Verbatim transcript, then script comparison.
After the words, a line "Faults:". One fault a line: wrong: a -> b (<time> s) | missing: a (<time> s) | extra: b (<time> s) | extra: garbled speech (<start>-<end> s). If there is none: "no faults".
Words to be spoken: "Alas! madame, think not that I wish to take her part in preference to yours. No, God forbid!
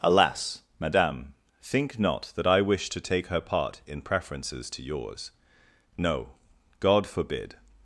"Alas! madame, think not that I wish to take her part in preferences to yours. No, God forbid!
Faults:
wrong: preference -> preferences (4.0 s)